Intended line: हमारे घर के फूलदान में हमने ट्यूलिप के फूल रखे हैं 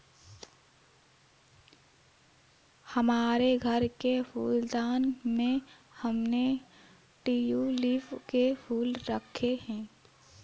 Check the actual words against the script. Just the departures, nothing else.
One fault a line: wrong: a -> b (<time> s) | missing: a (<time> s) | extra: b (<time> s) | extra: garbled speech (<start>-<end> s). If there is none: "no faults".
no faults